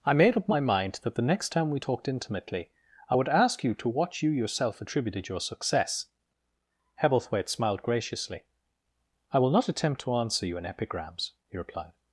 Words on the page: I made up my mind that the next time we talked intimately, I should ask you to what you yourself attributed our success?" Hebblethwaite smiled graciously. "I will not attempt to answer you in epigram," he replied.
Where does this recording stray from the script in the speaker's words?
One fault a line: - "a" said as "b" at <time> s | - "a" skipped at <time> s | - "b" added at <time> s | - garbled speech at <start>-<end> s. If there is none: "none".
- "should" said as "would" at 3.1 s
- "our" said as "your" at 5.3 s
- "epigram" said as "epigrams" at 10.7 s